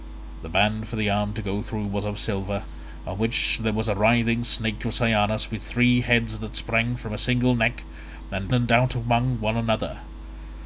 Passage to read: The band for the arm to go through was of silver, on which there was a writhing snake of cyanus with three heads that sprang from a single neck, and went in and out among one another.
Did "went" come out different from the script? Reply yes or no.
yes